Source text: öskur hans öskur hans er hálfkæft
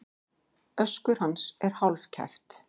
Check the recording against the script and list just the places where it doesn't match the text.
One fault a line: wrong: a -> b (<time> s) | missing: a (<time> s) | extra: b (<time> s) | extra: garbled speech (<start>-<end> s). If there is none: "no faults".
missing: öskur hans (1.6 s)